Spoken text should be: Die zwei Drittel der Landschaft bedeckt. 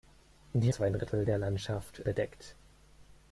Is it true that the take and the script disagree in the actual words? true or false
false